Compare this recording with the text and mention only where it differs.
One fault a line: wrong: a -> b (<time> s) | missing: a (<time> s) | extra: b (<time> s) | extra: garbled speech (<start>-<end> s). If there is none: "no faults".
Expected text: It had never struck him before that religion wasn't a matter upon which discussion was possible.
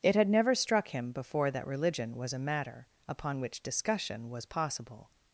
wrong: wasn't -> was (2.1 s)